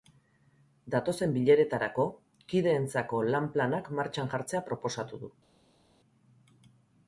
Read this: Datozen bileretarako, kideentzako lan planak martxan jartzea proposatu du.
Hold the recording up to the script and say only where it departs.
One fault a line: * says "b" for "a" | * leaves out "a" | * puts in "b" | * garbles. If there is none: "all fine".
all fine